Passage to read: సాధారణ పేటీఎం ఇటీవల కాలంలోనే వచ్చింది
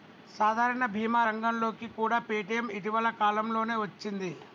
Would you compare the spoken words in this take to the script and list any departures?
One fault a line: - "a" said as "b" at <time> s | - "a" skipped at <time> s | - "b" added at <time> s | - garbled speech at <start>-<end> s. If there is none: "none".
- "భీమా రంగంలోకి కూడా" added at 0.9 s